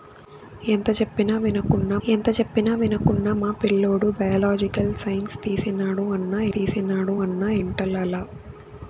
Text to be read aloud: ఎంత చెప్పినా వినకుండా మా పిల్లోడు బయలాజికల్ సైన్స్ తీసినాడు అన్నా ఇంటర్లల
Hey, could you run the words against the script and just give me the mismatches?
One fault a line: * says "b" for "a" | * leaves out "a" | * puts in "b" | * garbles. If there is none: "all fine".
* puts in "ఎంత చెప్పినా వినకుండా"
* puts in "తీసినాడు అన్నా"